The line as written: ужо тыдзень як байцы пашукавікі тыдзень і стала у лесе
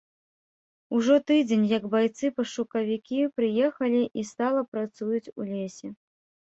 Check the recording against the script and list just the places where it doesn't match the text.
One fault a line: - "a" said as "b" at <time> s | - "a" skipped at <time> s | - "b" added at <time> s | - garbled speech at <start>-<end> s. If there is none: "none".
- "тыдзень" said as "прыехалі" at 3.4 s
- "працуюць" added at 4.8 s